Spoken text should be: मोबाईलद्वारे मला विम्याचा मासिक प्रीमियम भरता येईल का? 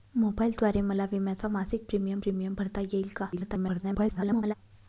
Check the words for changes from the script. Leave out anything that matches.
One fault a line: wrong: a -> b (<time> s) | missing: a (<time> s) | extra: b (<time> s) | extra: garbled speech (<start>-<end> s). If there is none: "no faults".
extra: प्रीमियम (2.2 s)
extra: garbled speech (3.3-4.5 s)